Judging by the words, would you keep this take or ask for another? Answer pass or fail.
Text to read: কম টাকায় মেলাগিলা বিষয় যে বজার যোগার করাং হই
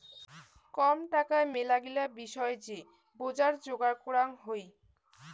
pass